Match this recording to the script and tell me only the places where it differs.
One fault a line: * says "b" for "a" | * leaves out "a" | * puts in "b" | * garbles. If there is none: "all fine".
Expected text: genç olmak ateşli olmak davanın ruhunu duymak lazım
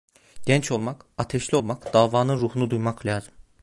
all fine